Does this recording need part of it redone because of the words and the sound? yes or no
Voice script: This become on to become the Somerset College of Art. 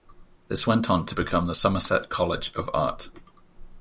yes